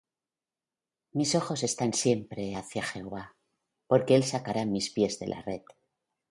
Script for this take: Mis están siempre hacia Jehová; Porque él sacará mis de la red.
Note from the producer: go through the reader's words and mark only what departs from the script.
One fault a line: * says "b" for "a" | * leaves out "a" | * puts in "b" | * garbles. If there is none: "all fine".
* puts in "ojos"
* puts in "pies"